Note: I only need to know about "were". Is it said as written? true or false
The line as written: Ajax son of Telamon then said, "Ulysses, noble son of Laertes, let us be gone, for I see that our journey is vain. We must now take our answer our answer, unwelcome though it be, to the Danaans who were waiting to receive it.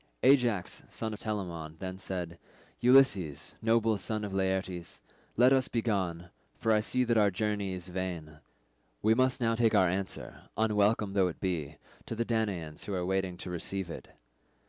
false